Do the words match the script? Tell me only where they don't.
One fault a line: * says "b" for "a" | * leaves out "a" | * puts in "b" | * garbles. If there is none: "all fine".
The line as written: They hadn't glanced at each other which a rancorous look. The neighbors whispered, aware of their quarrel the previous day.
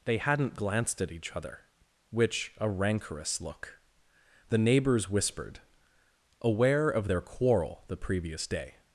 all fine